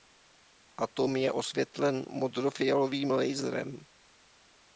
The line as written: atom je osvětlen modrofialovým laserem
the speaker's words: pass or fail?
pass